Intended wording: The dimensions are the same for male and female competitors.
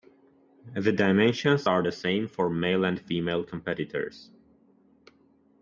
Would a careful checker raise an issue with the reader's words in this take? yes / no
no